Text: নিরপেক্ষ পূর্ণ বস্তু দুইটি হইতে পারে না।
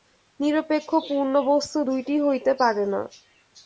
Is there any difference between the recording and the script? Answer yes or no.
no